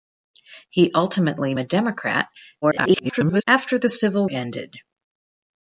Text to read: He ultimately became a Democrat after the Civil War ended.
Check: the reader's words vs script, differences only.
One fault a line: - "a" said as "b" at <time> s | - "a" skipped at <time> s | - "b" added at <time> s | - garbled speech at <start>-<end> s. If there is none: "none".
- "became" skipped at 1.5 s
- garbled speech at 2.6-3.4 s
- "War" skipped at 4.3 s